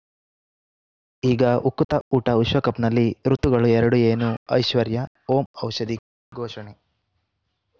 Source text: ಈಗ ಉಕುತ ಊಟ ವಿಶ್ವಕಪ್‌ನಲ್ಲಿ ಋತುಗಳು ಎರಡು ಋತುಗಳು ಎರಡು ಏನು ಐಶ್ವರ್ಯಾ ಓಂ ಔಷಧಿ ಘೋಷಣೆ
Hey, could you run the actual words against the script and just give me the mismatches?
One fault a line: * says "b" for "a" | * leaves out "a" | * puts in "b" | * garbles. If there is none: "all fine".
* leaves out "ಋತುಗಳು ಎರಡು"